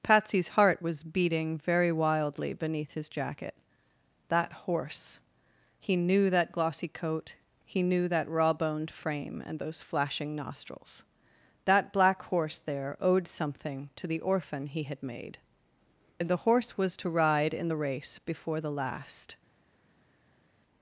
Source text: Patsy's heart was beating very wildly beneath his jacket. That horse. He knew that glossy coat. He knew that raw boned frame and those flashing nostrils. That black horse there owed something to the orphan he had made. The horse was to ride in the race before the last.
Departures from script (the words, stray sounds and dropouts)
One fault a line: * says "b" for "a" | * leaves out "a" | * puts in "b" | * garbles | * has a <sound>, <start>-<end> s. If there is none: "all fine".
* puts in "and"